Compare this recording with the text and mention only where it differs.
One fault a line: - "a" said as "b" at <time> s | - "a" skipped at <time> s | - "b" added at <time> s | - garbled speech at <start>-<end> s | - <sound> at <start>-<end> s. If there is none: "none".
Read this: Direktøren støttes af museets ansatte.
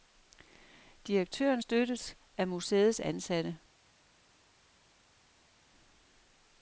none